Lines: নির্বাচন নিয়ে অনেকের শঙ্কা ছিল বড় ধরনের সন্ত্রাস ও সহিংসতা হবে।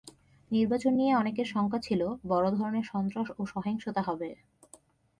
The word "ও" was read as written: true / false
true